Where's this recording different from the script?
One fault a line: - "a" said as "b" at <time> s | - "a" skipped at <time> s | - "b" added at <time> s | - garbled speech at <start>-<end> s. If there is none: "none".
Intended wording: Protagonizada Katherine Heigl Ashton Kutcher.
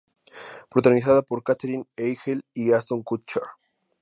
- "por" added at 1.2 s
- "y" added at 2.5 s